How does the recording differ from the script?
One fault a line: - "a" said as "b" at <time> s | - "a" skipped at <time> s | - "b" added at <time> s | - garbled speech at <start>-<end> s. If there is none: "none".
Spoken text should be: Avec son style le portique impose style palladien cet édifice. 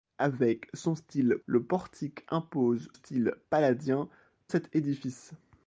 none